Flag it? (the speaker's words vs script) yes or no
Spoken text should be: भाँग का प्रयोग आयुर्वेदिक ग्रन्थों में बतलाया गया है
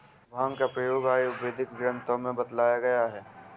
no